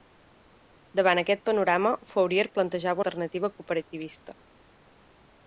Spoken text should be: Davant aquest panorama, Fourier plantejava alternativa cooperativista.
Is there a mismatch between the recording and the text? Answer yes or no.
no